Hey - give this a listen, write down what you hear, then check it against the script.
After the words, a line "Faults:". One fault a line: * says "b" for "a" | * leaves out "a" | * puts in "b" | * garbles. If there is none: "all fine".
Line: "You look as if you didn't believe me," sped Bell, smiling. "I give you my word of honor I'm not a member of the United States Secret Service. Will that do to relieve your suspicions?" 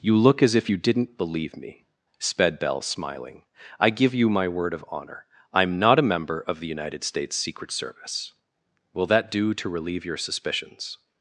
"You look as if you didn't believe me," sped Bell, smiling. "I give you my word of honor I'm not a member of the United States Secret Service. Will that do to relieve your suspicions?"
Faults:
all fine